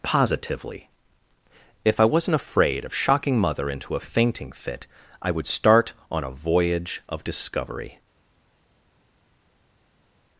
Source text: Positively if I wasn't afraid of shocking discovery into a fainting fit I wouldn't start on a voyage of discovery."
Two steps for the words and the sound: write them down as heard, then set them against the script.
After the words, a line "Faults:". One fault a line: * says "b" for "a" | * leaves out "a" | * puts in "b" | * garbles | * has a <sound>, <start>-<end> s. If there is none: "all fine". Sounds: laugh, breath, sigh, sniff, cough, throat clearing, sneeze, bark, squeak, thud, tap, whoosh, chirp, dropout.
Positively if I wasn't afraid of shocking mother into a fainting fit I would start on a voyage of discovery."
Faults:
* says "mother" for "discovery"
* says "would" for "wouldn't"